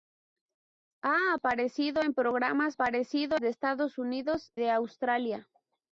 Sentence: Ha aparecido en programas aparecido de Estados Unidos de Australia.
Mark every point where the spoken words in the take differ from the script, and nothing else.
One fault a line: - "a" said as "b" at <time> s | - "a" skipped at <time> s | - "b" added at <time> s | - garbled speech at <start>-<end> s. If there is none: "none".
none